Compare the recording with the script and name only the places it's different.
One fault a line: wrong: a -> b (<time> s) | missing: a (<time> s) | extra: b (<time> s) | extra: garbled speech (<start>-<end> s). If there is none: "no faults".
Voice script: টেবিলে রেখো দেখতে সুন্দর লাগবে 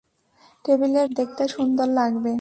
missing: রেখো (1.0 s)